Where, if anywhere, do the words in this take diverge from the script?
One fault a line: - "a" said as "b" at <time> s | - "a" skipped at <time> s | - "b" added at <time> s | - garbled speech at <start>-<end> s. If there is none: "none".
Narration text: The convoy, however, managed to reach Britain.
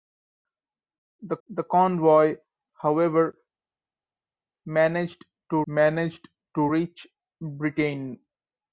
- "the" added at 1.5 s
- "managed to" added at 5.7 s